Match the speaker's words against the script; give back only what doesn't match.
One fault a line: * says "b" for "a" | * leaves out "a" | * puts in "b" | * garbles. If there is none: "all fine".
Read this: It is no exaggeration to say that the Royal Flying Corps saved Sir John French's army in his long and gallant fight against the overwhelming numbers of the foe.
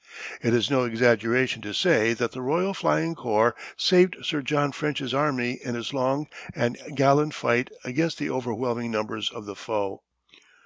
all fine